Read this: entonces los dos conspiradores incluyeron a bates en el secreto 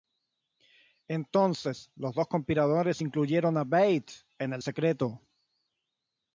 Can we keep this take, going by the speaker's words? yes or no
yes